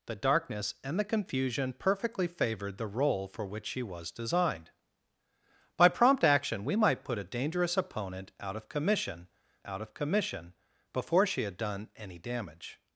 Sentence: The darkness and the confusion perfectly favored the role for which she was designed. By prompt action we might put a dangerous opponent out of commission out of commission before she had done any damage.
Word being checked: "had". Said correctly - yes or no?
yes